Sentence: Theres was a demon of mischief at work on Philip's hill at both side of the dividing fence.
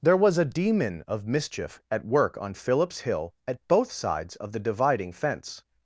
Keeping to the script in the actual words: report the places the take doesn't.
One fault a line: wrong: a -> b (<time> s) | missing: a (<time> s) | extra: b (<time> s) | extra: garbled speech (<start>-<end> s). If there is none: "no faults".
wrong: Theres -> There (0.0 s)
wrong: side -> sides (3.9 s)